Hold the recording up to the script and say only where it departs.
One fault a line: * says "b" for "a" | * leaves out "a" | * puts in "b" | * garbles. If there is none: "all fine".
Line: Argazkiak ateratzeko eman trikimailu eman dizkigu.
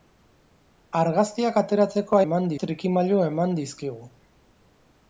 all fine